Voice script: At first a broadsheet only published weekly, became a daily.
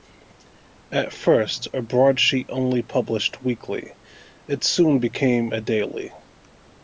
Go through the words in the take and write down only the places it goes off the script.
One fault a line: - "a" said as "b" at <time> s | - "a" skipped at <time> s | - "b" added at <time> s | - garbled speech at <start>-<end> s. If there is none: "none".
- "it soon" added at 4.5 s